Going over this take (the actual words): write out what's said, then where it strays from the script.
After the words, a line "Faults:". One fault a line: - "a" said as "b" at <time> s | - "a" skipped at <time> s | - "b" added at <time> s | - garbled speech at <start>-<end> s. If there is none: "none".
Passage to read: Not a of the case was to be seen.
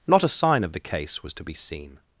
Not a sign of the case was to be seen.
Faults:
- "sign" added at 0.3 s